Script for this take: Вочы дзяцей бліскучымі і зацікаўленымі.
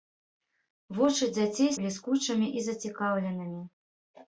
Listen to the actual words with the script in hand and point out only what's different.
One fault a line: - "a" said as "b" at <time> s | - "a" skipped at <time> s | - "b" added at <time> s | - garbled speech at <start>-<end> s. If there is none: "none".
none